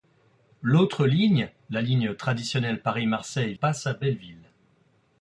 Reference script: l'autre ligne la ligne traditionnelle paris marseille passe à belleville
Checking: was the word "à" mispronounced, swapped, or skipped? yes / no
no